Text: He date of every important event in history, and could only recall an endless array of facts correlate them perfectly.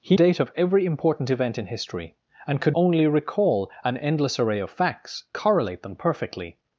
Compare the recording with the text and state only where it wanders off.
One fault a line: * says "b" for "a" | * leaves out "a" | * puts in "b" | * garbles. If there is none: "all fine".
all fine